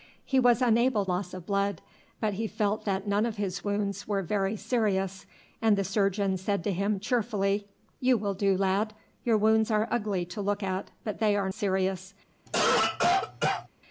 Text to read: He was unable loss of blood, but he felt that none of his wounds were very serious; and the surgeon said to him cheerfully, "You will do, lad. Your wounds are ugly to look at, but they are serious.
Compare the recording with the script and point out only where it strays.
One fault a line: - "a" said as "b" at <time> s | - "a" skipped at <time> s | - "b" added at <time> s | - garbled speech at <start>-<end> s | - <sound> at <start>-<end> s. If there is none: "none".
- cough at 12.5-13.7 s